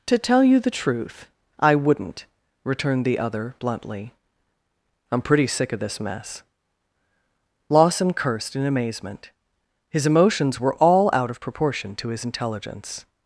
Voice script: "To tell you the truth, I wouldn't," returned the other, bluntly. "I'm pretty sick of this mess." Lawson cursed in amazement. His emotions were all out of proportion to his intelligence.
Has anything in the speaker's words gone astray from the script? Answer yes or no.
no